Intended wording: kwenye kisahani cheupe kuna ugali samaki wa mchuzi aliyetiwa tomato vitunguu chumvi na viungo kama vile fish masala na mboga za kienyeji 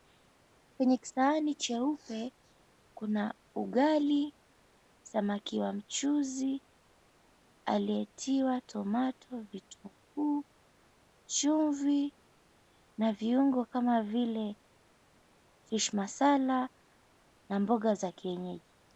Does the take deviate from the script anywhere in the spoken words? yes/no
no